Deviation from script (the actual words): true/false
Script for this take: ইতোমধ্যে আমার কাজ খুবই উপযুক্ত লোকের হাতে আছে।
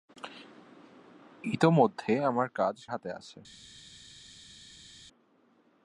true